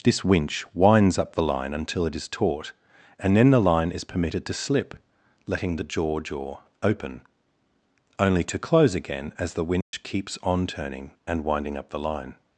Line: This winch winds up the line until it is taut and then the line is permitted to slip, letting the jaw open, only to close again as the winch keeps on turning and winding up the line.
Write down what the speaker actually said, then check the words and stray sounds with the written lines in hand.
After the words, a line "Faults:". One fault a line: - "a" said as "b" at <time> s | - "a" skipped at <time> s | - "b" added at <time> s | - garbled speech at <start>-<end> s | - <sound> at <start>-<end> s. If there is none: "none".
This winch winds up the line until it is taut and then the line is permitted to slip, letting the jaw jaw open, only to close again as the winch keeps on turning and winding up the line.
Faults:
- "jaw" added at 6.2 s
- dropout at 9.8-9.9 s